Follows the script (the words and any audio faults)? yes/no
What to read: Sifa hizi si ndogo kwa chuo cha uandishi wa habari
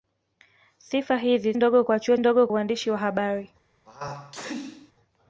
no